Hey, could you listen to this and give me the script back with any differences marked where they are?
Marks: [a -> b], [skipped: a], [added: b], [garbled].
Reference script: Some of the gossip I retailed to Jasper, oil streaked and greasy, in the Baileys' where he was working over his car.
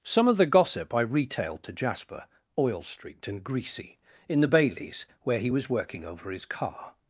Some of the gossip I retailed to Jasper, oil streaked and greasy, in the Baileys' where he was working over his car.